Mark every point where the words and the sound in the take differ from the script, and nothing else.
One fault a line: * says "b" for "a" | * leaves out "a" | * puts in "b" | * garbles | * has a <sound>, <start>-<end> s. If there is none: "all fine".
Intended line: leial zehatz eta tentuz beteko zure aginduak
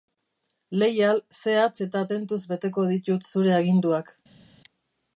* puts in "ditut"